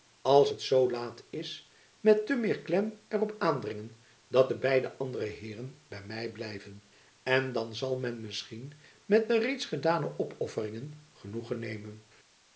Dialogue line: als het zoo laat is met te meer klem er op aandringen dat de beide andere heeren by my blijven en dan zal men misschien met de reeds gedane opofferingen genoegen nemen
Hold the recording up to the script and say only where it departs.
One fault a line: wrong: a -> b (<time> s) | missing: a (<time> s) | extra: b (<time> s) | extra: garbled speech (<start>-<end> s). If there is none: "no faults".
no faults